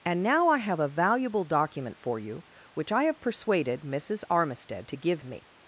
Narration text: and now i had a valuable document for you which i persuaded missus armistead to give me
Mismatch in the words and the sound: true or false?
true